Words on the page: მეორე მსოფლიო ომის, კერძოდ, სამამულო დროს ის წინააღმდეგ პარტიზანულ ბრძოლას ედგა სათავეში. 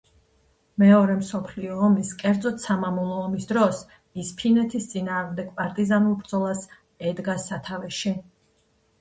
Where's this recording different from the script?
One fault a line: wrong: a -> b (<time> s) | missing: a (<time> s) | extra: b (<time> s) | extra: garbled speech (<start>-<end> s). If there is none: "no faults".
extra: ომის (3.2 s)
extra: ფინეთის (4.4 s)